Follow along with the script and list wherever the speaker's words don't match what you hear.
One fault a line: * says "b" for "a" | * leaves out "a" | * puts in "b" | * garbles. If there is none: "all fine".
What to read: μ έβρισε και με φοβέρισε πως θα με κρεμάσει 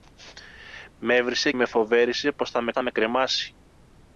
* leaves out "και"
* puts in "θα με"